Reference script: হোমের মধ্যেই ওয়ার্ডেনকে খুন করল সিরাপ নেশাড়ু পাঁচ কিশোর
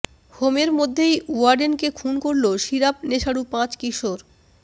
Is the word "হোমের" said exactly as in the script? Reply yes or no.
yes